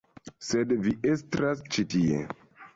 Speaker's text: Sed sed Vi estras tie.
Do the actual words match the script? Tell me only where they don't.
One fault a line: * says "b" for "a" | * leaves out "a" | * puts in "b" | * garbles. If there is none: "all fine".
* leaves out "sed"
* puts in "ĉi"